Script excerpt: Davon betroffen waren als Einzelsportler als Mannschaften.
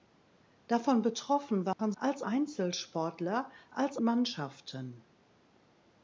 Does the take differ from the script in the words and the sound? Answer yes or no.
yes